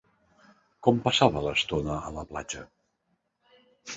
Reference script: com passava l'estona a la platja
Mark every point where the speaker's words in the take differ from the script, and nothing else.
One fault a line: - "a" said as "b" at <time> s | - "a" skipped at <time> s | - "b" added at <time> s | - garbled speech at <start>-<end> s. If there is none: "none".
none